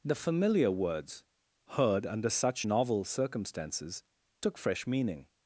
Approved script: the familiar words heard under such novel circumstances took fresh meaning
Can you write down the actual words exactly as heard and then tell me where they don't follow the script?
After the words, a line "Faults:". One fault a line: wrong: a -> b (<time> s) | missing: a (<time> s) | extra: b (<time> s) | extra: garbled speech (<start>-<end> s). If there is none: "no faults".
the familiar words heard under such novel circumstances took fresh meaning
Faults:
no faults